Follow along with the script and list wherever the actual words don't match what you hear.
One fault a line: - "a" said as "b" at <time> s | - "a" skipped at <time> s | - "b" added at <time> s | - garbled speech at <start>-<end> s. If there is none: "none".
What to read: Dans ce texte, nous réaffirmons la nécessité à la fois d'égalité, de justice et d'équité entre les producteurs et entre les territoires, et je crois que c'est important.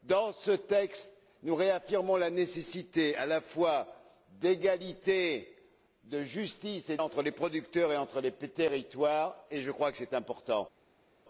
- "d'équité" skipped at 7.0 s